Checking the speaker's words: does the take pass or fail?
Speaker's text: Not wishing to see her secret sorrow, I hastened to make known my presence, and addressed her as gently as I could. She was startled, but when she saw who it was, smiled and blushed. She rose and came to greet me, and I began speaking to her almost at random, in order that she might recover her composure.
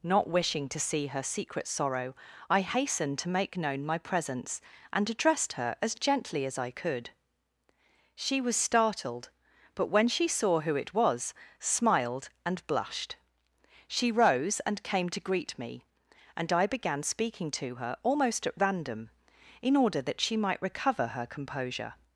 pass